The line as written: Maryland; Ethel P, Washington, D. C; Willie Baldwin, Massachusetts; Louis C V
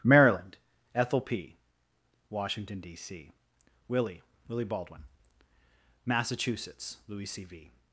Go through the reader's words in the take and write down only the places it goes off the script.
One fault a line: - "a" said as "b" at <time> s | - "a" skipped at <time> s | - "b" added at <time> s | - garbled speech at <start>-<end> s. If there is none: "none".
- "Willie" added at 4.5 s